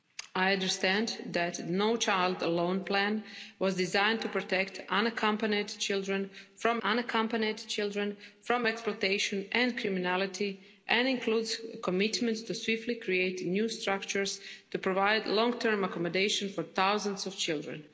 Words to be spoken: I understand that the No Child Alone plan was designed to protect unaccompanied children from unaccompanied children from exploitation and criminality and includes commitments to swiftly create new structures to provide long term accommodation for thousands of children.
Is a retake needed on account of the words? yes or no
no